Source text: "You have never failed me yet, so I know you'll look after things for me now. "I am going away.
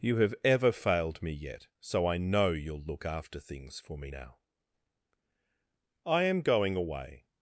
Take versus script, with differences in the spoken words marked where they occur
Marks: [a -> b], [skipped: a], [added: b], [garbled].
"You have [never -> ever] failed me yet, so I know you'll look after things for me now. "I am going away.